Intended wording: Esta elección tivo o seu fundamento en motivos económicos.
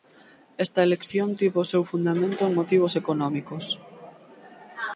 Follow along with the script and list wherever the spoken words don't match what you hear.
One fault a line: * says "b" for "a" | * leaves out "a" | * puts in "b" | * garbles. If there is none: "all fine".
all fine